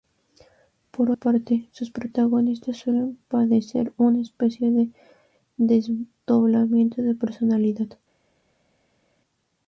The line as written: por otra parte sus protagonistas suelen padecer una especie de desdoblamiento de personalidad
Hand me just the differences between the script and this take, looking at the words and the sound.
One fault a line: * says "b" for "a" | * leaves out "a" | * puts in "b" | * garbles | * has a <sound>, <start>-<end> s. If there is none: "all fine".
* leaves out "otra"